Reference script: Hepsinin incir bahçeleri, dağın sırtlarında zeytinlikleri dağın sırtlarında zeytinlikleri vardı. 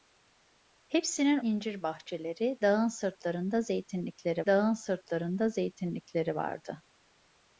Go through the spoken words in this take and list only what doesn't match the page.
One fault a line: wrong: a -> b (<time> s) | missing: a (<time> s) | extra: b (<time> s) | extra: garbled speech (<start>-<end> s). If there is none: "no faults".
no faults